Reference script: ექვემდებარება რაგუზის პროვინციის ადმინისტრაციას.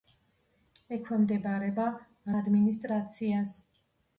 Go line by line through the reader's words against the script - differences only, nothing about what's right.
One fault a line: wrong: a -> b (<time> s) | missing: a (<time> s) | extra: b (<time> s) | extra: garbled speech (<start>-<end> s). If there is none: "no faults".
missing: რაგუზის პროვინციის (1.9 s)